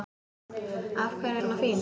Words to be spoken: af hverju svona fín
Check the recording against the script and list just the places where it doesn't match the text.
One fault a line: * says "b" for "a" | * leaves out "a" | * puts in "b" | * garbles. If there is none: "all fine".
all fine